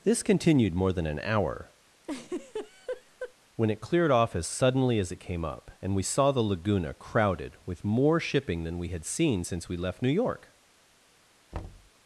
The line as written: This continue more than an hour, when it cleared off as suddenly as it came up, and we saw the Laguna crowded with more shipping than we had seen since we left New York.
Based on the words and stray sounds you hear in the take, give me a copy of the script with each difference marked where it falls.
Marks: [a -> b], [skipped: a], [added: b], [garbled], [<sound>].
This [continue -> continued] more than an hour, [laugh] when it cleared off as suddenly as it came up, and we saw the Laguna crowded with more shipping than we had seen since we left New York. [thud]